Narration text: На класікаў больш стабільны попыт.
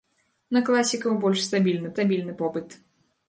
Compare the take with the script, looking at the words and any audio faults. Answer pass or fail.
fail